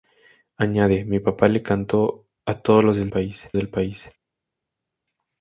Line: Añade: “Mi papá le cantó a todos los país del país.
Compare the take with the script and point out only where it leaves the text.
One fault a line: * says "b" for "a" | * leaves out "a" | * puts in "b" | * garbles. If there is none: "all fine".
all fine